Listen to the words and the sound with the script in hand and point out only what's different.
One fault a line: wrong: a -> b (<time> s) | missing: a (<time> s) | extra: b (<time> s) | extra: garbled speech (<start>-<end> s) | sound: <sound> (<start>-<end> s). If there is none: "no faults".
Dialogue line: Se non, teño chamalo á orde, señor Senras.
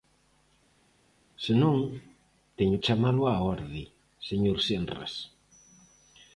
no faults